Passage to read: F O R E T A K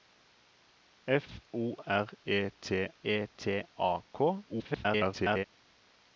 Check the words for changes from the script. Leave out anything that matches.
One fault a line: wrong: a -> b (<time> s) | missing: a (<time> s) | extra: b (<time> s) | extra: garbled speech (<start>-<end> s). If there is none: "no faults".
extra: E T (3.0 s)
extra: garbled speech (4.5-5.5 s)